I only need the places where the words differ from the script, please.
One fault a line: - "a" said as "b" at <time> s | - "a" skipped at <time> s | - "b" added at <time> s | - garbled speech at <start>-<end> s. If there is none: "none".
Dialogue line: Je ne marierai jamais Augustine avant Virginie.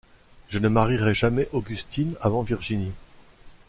none